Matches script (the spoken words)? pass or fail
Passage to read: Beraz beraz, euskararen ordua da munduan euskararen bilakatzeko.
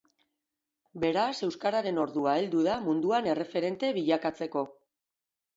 fail